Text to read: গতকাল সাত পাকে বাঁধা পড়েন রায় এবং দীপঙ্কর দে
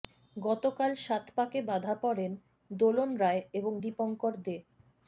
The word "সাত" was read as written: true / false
true